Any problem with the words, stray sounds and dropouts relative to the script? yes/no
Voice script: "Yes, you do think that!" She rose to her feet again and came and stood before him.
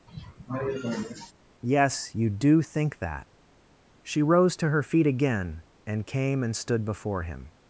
yes